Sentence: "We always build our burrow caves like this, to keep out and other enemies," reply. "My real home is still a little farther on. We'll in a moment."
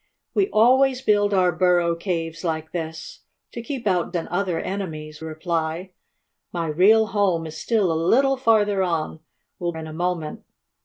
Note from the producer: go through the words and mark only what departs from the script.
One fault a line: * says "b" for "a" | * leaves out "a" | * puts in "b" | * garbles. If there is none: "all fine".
all fine